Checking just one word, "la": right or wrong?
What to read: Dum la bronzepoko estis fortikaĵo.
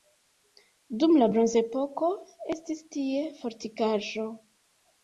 right